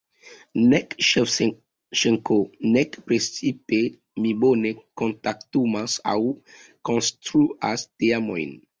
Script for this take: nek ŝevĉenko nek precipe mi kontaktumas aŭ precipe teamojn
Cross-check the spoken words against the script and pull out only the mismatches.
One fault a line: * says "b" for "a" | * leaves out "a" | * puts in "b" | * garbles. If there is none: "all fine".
* puts in "bone"
* says "konstruas" for "precipe"